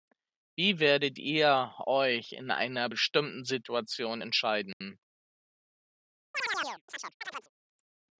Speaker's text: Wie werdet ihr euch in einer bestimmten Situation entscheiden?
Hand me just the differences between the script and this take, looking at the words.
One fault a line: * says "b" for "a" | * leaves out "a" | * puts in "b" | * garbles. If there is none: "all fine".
all fine